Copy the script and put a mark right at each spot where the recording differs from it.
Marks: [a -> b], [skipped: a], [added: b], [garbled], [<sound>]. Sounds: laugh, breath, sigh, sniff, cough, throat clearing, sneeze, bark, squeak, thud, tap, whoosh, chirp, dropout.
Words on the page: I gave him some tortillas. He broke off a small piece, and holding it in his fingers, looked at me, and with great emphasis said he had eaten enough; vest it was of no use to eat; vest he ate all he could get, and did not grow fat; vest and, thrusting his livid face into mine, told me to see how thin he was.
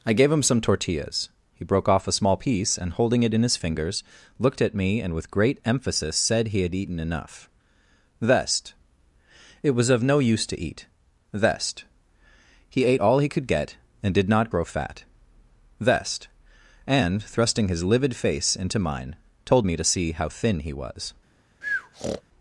I gave him some tortillas. He broke off a small piece, and holding it in his fingers, looked at me, and with great emphasis said he had eaten enough; vest it was of no use to eat; vest he ate all he could get, and did not grow fat; vest and, thrusting his livid face into mine, told me to see how thin he was. [breath]